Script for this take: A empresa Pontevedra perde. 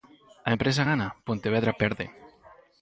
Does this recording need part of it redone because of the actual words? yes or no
yes